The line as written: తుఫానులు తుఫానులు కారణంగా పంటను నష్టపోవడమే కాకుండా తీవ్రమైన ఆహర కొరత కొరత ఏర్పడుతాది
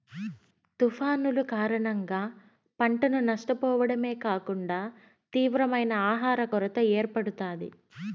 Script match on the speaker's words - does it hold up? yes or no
no